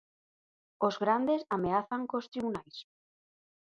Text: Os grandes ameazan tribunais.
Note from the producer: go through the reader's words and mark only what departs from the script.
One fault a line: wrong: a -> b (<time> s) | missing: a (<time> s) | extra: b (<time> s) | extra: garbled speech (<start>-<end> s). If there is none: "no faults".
extra: cos (2.1 s)